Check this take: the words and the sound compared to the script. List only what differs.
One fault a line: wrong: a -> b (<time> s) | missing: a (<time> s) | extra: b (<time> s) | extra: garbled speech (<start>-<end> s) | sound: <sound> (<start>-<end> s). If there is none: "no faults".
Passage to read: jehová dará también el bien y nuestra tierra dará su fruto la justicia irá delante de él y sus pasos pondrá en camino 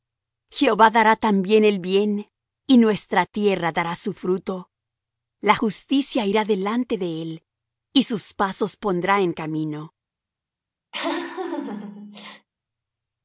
sound: laugh (10.9-12.5 s)